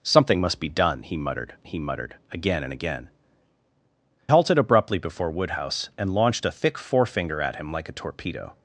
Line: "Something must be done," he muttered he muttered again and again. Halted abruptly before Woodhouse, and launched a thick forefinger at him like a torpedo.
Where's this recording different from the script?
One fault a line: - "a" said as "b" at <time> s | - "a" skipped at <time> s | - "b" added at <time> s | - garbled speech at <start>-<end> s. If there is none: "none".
none